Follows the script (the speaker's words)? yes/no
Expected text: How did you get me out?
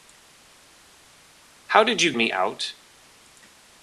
no